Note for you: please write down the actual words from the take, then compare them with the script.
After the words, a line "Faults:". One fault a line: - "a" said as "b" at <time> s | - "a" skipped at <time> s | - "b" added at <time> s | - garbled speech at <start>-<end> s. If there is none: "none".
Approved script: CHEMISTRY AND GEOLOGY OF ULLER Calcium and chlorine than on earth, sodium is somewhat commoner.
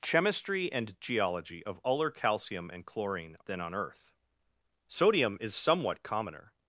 CHEMISTRY AND GEOLOGY OF ULLER Calcium and chlorine than on earth, sodium is somewhat commoner.
Faults:
none